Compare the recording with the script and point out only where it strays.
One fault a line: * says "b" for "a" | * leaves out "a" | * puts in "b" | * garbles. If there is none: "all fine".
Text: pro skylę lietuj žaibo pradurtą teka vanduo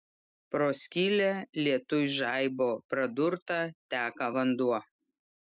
all fine